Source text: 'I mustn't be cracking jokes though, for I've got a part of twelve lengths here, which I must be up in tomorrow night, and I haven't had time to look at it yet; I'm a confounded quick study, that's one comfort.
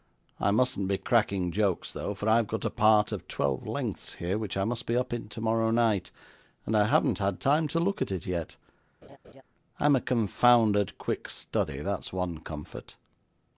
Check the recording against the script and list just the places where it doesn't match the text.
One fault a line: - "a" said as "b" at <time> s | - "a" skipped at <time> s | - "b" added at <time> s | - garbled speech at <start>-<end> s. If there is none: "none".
none